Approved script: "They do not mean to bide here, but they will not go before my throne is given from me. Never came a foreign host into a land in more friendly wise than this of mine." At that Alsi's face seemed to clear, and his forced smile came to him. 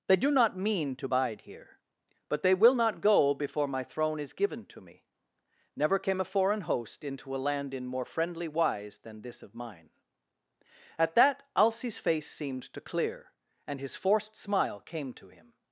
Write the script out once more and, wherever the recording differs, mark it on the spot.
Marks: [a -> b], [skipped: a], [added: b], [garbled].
"They do not mean to bide here, but they will not go before my throne is given [from -> to] me. Never came a foreign host into a land in more friendly wise than this of mine." At that Alsi's face seemed to clear, and his forced smile came to him.